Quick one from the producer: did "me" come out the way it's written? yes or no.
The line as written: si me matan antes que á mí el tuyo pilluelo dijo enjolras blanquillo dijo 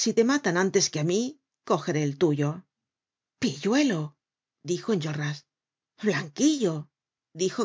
no